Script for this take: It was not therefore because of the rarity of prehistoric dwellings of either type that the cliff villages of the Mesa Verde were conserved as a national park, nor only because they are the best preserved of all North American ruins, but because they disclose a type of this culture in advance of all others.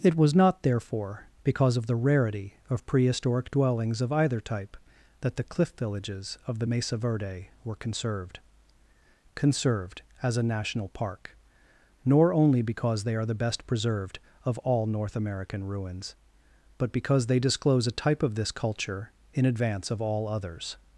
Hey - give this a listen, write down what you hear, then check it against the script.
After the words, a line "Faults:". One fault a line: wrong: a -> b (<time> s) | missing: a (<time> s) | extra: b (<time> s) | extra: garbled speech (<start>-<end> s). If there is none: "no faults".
It was not therefore because of the rarity of prehistoric dwellings of either type that the cliff villages of the Mesa Verde were conserved conserved as a national park, nor only because they are the best preserved of all North American ruins, but because they disclose a type of this culture in advance of all others.
Faults:
extra: conserved (9.3 s)